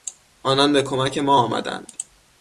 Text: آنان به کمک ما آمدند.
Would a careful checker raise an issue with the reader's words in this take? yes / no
no